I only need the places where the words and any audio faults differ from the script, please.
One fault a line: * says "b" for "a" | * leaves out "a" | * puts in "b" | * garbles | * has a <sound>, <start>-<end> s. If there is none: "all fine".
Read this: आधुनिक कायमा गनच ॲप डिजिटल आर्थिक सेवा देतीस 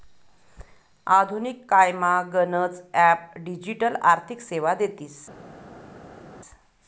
all fine